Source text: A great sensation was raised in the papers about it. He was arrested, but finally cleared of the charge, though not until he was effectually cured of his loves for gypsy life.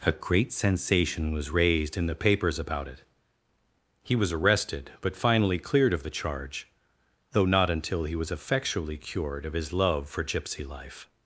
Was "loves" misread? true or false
true